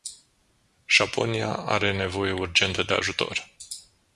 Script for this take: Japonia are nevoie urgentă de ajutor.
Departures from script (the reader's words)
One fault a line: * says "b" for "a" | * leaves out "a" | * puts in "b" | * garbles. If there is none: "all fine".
all fine